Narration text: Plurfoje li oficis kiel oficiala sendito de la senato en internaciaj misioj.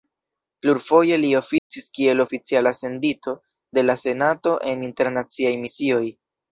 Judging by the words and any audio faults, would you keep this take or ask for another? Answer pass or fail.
fail